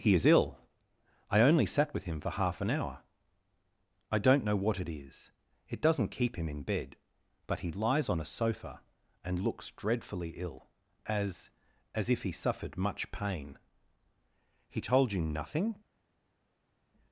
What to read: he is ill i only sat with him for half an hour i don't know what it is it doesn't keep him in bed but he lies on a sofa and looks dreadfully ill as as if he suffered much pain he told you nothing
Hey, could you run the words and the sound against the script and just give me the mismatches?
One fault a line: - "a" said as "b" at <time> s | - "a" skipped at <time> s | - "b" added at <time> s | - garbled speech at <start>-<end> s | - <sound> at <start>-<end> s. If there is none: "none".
none